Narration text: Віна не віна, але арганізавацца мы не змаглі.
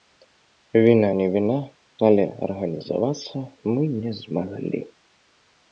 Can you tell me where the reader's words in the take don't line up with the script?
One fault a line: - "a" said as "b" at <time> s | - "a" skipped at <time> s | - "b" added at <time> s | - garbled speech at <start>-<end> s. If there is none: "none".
none